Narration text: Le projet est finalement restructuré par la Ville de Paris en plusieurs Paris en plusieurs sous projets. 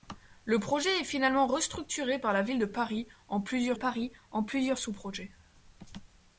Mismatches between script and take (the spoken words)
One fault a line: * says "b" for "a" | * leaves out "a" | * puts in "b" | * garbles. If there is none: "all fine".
all fine